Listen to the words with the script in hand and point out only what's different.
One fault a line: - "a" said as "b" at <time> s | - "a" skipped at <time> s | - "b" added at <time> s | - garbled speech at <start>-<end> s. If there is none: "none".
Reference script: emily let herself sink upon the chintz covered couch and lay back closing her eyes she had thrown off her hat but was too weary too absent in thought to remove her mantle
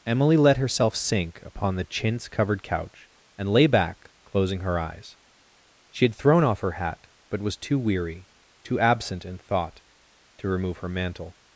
none